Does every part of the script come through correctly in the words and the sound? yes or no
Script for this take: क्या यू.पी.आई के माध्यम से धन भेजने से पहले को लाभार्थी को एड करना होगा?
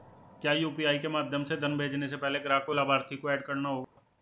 no